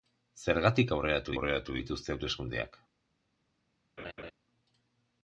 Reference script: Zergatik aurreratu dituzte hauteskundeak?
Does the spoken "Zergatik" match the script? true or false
true